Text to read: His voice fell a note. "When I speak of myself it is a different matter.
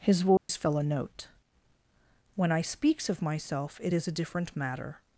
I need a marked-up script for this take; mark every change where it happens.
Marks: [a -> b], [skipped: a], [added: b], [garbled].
His voice fell a note. "When I [speak -> speaks] of myself it is a different matter.